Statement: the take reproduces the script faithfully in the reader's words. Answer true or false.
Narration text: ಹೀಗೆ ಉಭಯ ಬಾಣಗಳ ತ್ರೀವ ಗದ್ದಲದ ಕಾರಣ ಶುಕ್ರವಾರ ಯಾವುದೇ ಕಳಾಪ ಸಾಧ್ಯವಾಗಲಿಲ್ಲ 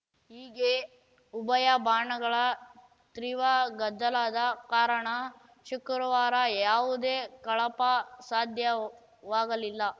true